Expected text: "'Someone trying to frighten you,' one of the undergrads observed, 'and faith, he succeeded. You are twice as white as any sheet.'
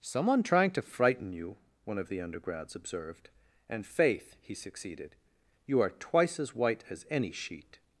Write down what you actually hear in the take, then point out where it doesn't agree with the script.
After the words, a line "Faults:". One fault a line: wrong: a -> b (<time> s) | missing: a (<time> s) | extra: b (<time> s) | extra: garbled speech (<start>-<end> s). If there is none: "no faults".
"'Someone trying to frighten you,' one of the undergrads observed, 'and faith, he succeeded. You are twice as white as any sheet.'
Faults:
no faults